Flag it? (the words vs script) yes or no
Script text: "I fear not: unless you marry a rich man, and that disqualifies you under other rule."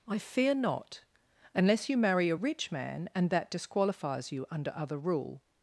no